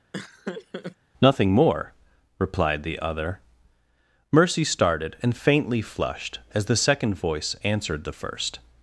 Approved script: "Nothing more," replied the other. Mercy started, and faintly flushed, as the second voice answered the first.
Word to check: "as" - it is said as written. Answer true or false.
true